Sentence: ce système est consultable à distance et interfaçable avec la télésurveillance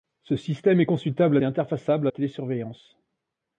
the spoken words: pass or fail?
fail